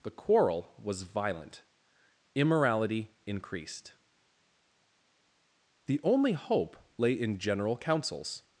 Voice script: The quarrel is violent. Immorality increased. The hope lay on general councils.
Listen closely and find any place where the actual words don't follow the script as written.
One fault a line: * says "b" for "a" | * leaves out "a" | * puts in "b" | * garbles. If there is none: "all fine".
* says "was" for "is"
* puts in "only"
* says "in" for "on"